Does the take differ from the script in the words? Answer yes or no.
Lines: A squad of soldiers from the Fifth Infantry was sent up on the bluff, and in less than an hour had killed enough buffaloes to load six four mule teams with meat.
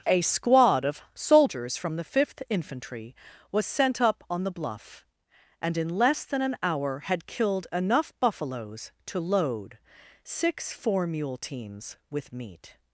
no